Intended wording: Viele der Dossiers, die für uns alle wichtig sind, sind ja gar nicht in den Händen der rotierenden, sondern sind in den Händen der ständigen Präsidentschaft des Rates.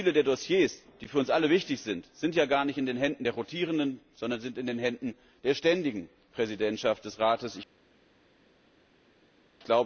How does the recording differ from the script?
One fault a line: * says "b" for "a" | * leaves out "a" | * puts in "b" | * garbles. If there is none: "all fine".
all fine